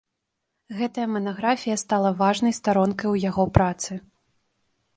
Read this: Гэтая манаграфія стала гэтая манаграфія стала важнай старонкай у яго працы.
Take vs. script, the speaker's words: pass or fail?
fail